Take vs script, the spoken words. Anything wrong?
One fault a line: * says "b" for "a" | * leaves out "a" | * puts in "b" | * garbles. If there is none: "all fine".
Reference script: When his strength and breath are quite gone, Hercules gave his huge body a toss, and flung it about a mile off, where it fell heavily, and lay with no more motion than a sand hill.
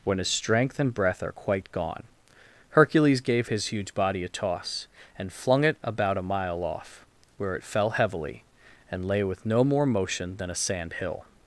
all fine